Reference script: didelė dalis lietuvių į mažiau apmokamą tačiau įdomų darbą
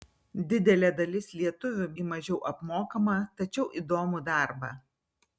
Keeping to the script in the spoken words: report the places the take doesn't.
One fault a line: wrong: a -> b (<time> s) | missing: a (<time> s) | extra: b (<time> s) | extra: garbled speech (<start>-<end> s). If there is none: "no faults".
no faults